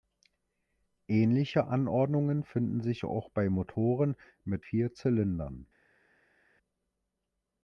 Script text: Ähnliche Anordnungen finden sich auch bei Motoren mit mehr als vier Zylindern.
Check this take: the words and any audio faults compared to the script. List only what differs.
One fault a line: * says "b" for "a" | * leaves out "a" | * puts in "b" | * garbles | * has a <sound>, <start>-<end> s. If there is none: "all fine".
* leaves out "mehr als"